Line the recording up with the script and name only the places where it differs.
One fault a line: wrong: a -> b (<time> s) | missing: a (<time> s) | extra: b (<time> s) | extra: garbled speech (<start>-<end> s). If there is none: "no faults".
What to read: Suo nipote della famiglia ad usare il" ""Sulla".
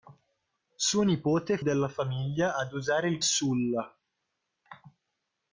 no faults